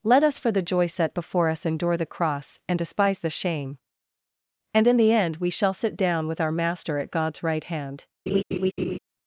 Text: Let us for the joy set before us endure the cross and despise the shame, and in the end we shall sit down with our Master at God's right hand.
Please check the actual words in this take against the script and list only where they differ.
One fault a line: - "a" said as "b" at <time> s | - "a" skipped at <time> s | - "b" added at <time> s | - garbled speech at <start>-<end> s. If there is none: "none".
none